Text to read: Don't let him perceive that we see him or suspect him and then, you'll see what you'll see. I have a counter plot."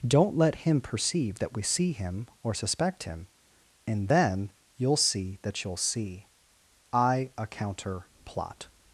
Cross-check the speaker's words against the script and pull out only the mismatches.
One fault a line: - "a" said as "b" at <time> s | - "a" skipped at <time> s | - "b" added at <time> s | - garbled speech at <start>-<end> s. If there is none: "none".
- "what" said as "that" at 5.4 s
- "have" skipped at 7.3 s